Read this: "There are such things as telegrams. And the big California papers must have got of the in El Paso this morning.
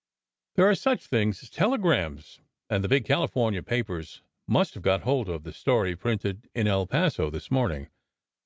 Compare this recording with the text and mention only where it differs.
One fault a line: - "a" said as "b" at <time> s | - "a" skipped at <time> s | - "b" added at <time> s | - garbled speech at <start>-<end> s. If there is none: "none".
- "hold" added at 5.0 s
- "story printed" added at 5.5 s